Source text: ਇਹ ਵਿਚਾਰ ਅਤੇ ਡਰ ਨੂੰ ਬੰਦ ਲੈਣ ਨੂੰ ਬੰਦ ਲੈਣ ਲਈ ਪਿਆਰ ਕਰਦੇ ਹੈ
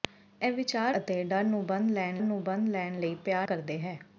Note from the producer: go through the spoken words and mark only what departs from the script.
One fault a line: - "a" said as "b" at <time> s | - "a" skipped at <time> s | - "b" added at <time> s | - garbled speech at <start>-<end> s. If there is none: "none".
none